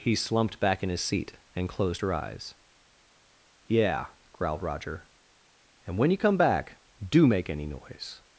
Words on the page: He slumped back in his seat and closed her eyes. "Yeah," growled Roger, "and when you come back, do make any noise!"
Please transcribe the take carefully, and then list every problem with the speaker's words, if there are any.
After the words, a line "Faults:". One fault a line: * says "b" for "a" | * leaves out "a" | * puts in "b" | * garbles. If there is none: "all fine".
He slumped back in his seat and closed her eyes. "Yeah," growled Roger, "and when you come back, do make any noise!"
Faults:
all fine